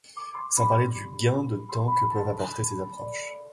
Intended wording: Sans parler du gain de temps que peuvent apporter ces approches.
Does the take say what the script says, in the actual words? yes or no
yes